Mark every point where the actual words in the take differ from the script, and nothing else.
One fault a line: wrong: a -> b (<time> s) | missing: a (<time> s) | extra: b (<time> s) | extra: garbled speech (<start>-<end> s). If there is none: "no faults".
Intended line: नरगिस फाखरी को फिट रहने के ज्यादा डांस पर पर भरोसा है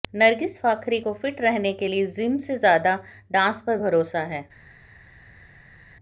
extra: लिए जिम से (1.9 s)
missing: पर (3.8 s)